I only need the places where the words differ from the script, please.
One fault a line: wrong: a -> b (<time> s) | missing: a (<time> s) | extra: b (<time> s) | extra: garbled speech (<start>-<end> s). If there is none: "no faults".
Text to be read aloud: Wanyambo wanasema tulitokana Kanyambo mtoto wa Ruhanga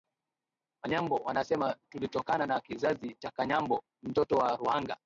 extra: na kizazi cha (2.5 s)